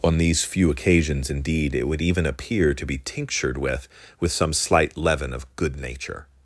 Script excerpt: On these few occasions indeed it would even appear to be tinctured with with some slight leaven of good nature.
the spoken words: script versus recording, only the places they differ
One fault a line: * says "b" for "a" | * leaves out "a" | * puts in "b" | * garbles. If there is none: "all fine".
all fine